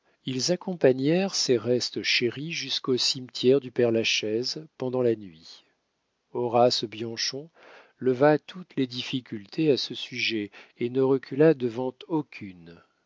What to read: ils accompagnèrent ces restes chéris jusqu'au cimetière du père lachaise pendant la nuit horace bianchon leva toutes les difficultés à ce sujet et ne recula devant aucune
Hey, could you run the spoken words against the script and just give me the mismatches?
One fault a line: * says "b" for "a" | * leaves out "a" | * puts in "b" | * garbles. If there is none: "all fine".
all fine